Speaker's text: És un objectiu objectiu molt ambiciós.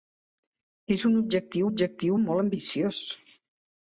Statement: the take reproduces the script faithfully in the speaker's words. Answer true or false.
true